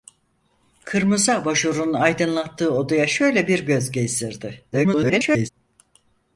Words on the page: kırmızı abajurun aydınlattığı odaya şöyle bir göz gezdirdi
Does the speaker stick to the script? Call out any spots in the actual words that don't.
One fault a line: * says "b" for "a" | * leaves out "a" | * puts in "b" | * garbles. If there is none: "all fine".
* garbles